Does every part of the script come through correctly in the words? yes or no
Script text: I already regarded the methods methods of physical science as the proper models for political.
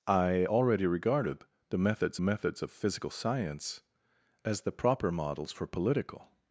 yes